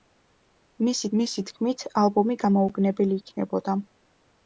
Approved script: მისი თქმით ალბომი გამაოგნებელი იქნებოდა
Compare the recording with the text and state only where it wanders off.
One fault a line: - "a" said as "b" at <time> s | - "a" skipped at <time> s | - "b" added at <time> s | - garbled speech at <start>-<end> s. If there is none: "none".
- "მისი" added at 1.2 s